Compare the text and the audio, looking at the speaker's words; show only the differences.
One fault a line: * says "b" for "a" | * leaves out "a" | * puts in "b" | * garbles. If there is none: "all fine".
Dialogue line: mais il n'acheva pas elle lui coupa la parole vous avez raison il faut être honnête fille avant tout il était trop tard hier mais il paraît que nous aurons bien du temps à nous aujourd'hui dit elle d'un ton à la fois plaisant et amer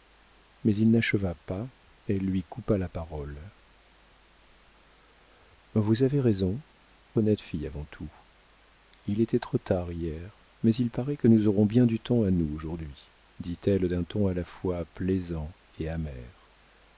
* leaves out "il faut être"